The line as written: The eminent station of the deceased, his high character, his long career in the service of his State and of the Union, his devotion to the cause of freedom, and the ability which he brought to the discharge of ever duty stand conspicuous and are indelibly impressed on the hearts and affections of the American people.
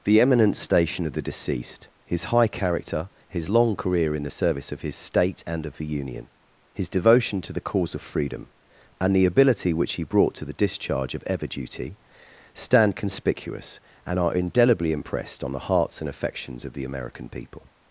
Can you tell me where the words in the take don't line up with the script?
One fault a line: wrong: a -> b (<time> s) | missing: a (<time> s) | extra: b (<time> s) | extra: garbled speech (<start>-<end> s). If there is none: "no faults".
no faults